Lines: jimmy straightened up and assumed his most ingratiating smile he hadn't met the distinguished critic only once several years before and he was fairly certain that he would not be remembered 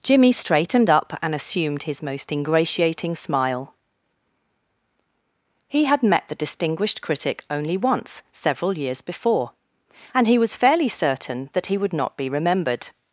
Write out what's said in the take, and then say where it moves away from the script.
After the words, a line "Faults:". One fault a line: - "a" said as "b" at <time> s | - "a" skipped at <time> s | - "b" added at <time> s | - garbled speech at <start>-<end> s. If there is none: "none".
jimmy straightened up and assumed his most ingratiating smile he had met the distinguished critic only once several years before and he was fairly certain that he would not be remembered
Faults:
- "hadn't" said as "had" at 5.8 s